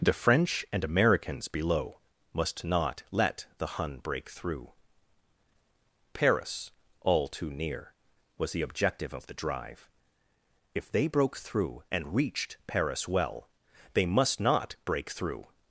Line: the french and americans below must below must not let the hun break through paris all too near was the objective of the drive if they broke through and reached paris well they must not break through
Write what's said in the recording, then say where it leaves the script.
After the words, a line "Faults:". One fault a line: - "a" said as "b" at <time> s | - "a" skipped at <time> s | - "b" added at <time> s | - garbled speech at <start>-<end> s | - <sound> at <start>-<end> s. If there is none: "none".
the french and americans below must not let the hun break through paris all too near was the objective of the drive if they broke through and reached paris well they must not break through
Faults:
- "below must" skipped at 2.6 s